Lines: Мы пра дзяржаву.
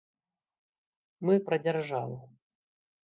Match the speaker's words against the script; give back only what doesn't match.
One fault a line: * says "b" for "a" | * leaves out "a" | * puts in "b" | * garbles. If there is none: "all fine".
all fine